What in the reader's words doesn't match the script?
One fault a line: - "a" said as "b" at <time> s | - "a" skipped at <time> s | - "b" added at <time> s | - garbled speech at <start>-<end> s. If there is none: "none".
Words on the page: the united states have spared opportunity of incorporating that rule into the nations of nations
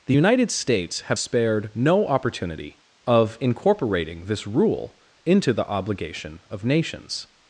- "no" added at 1.7 s
- "that" said as "this" at 4.3 s
- "nations" said as "obligation" at 5.7 s